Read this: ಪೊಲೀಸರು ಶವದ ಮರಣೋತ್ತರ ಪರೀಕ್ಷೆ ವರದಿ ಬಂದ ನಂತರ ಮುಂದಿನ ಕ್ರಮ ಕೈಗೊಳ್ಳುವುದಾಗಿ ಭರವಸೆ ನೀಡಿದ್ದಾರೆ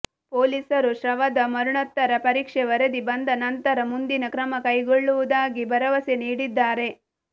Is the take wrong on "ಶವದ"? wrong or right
right